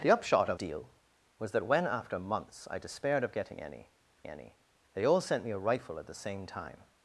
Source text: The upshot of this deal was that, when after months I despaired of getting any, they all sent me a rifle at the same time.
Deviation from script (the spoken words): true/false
true